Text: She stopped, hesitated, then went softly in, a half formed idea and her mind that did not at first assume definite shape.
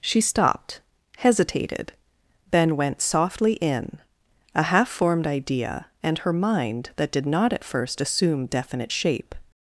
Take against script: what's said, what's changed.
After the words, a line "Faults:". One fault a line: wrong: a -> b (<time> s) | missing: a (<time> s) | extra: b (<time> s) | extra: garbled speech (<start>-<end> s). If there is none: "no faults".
She stopped, hesitated, then went softly in, a half formed idea and her mind that did not at first assume definite shape.
Faults:
no faults